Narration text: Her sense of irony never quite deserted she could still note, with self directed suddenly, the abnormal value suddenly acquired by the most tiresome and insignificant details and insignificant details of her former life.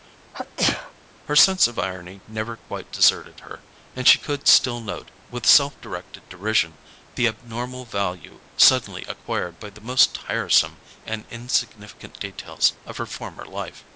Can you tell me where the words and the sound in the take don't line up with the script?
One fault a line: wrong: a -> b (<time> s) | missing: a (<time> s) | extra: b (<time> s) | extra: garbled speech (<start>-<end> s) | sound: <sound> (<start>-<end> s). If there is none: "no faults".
sound: sneeze (0.3-0.9 s)
extra: her and (3.4 s)
wrong: suddenly -> derision (6.3 s)
missing: and insignificant details (12.7 s)